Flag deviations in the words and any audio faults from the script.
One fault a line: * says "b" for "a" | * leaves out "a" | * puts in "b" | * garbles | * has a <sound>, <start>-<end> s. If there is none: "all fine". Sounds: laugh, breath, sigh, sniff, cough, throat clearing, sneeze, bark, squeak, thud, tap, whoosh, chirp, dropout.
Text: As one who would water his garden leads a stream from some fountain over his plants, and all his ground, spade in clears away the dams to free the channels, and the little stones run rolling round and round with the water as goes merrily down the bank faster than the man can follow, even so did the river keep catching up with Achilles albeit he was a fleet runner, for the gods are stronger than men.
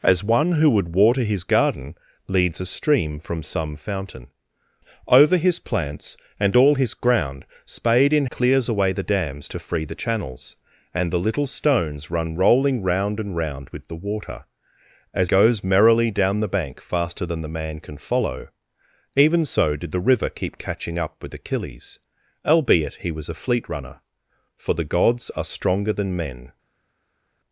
all fine